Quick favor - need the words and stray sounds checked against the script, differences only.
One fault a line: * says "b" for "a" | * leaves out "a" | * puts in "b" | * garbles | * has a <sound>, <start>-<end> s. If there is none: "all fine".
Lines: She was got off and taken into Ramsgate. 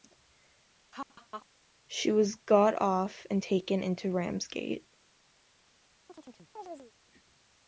* has a laugh, 0.9-1.5 s
* has a chirp, 6.1-6.9 s